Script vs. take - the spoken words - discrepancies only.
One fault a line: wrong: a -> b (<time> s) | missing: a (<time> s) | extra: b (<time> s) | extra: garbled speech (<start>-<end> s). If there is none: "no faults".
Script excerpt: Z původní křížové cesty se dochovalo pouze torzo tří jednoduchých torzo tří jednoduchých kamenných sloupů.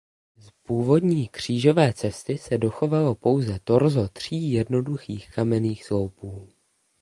missing: torzo tří jednoduchých (5.3 s)